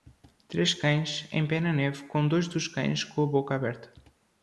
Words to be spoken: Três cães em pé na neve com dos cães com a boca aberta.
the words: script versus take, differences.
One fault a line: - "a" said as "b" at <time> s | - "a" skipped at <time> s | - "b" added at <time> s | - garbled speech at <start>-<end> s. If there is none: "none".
- "dois" added at 2.3 s